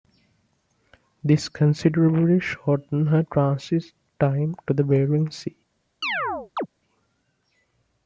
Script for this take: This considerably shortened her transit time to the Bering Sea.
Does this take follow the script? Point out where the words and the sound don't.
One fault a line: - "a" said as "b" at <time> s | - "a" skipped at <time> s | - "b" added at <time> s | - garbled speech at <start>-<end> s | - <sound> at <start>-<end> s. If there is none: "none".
- chirp at 6.0-6.7 s